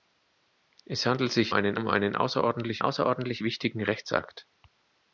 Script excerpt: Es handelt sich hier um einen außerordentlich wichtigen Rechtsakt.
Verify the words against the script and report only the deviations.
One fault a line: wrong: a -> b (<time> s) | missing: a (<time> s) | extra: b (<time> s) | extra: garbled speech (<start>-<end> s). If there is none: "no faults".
wrong: hier -> einen (1.5 s)
extra: außerordentlich (2.8 s)